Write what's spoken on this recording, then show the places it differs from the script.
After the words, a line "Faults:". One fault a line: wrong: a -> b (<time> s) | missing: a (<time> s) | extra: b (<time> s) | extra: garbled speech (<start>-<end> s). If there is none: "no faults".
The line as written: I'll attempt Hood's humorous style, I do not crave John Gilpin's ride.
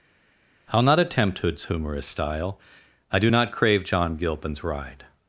I'll not attempt Hood's humorous style, I do not crave John Gilpin's ride.
Faults:
extra: not (0.8 s)